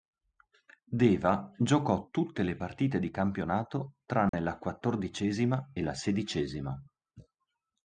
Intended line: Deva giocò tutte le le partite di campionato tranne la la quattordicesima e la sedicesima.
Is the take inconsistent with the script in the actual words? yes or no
yes